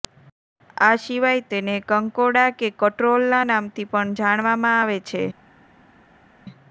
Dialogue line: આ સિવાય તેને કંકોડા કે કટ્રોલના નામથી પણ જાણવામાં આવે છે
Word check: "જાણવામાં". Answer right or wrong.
right